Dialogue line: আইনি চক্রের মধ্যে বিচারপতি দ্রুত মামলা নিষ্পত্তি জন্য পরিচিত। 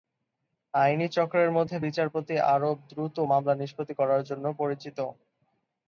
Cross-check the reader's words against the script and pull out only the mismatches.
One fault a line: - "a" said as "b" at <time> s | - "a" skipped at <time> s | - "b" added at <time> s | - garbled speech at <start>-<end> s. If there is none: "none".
- "আরব" added at 2.5 s
- "করার" added at 4.0 s